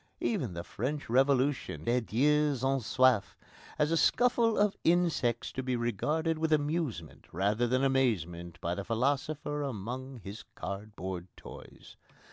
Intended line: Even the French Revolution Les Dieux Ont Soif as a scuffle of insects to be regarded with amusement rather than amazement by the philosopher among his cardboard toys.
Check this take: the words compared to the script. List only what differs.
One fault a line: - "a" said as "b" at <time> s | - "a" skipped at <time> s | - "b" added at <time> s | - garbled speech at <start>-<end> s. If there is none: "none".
none